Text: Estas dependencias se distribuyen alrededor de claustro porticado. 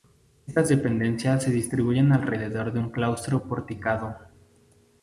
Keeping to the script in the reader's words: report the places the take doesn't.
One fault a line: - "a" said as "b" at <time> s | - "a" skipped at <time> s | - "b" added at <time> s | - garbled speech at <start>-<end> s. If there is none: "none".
- "un" added at 2.8 s